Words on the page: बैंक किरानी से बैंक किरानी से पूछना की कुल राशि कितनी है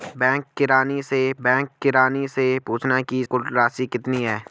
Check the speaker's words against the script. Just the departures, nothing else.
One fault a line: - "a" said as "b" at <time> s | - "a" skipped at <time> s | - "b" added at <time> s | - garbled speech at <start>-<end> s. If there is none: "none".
none